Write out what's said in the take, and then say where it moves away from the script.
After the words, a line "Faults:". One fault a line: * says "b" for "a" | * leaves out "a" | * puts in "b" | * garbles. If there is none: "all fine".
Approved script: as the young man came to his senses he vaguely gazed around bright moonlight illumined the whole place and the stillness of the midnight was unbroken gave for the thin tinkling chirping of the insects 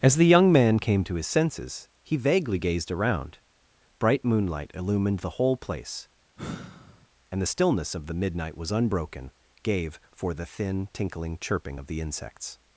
as the young man came to his senses he vaguely gazed around bright moonlight illumined the whole place and the stillness of the midnight was unbroken gave for the thin tinkling chirping of the insects
Faults:
all fine